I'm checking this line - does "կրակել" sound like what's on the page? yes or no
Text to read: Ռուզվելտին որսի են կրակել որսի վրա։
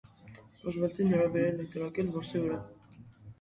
yes